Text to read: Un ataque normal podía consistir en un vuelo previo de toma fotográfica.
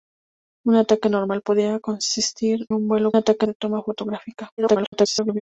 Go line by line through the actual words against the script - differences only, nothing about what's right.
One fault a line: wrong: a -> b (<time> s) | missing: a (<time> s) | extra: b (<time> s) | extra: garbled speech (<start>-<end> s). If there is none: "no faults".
missing: en (2.7 s)
wrong: previo -> ataque (3.1 s)
extra: garbled speech (4.6-5.4 s)